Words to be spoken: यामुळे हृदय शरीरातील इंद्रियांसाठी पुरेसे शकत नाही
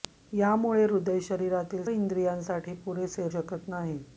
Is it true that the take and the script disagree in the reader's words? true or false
false